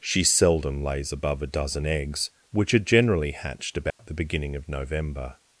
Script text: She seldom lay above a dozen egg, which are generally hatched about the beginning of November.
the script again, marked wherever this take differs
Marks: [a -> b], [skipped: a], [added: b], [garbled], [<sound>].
She seldom [lay -> lays] above a dozen [egg, -> eggs] which are generally hatched about [dropout] the beginning of November.